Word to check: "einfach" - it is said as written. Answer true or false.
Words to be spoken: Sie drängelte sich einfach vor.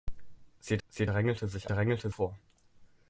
false